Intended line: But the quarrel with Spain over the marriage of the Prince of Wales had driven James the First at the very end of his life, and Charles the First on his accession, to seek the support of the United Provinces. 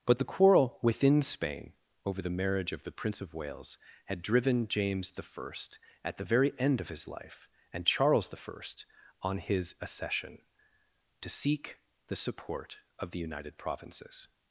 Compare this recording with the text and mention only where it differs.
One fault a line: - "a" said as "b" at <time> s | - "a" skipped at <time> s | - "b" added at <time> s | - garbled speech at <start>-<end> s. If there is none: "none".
- "with" said as "within" at 0.8 s